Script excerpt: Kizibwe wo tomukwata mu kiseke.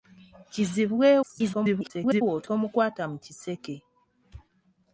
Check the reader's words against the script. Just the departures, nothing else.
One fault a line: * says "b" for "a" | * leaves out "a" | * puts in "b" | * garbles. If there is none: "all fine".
* garbles